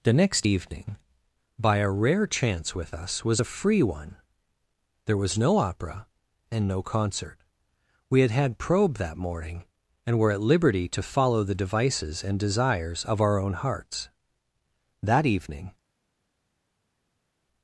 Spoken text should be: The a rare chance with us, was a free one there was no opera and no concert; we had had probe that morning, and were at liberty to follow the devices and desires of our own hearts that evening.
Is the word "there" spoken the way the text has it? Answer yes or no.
yes